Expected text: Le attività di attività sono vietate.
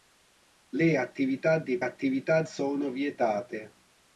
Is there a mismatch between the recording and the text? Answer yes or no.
no